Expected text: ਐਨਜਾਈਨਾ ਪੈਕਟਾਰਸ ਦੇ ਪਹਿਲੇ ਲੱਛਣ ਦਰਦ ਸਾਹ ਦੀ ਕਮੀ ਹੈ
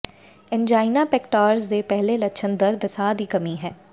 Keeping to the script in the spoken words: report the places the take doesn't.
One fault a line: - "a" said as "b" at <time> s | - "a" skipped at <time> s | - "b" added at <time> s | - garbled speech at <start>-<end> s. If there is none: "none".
none